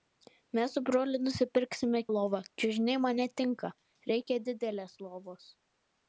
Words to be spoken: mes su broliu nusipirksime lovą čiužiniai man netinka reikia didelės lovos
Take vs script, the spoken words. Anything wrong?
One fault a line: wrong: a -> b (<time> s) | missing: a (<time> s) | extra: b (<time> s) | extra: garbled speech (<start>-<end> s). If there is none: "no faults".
no faults